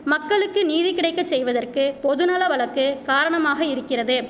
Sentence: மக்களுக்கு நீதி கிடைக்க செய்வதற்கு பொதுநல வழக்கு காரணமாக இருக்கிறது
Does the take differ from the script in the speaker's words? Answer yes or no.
no